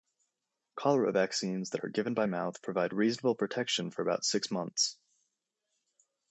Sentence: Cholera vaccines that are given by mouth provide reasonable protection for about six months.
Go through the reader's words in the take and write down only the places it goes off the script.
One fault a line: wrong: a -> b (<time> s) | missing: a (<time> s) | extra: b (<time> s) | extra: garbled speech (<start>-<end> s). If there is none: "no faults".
no faults